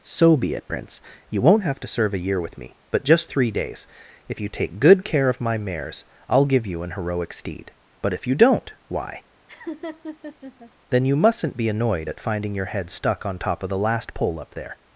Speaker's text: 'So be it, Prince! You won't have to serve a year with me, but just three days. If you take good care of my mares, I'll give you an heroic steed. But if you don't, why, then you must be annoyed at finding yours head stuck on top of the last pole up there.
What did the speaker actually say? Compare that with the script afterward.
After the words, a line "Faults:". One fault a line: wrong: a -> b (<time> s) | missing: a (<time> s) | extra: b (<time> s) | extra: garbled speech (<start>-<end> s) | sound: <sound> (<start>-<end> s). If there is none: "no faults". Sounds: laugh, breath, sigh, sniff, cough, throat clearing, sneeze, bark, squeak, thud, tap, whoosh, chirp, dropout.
'So be it, Prince! You won't have to serve a year with me, but just three days. If you take good care of my mares, I'll give you an heroic steed. But if you don't, why, then you mustn't be annoyed at finding your head stuck on top of the last pole up there.
Faults:
sound: laugh (9.5-10.7 s)
wrong: must -> mustn't (11.1 s)
wrong: yours -> your (12.5 s)